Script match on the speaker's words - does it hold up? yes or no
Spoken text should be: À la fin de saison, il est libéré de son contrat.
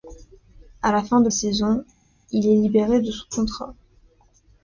yes